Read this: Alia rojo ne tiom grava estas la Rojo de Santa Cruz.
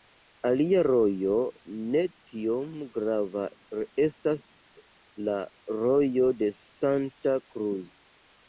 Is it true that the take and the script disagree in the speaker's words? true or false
false